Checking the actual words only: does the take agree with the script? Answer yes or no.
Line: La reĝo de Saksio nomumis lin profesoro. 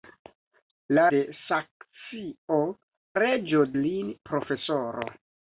no